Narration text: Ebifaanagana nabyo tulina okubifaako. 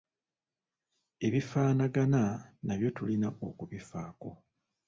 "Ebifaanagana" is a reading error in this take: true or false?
false